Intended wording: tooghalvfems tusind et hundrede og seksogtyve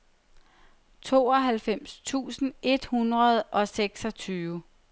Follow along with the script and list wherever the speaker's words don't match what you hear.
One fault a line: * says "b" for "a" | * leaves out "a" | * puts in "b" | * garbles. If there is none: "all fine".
all fine